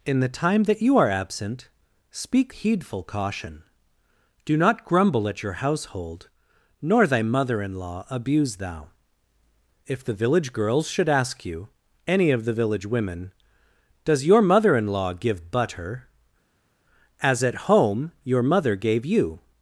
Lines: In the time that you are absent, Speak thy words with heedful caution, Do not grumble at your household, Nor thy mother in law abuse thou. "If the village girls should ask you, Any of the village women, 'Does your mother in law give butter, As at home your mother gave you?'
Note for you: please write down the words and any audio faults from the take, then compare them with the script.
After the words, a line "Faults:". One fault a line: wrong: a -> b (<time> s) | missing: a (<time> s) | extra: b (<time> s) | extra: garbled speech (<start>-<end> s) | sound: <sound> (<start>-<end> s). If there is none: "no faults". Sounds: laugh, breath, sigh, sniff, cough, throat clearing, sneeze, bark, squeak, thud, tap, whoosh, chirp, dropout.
In the time that you are absent, Speak heedful caution, Do not grumble at your household, Nor thy mother in law abuse thou. "If the village girls should ask you, Any of the village women, 'Does your mother in law give butter, As at home your mother gave you?'
Faults:
missing: thy words with (2.5 s)